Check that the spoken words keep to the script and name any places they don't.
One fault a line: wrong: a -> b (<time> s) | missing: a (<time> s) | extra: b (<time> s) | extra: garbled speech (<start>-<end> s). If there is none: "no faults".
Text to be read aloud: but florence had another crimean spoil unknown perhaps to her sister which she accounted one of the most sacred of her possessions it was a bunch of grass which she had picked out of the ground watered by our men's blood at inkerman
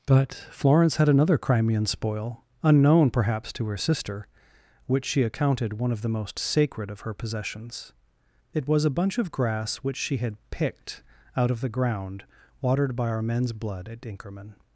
no faults